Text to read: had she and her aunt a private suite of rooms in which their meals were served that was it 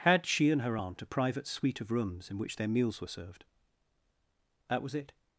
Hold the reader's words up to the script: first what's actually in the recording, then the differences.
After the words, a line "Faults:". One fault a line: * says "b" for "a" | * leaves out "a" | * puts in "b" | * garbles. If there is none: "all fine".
had she and her aunt a private suite of rooms in which their meals were served that was it
Faults:
all fine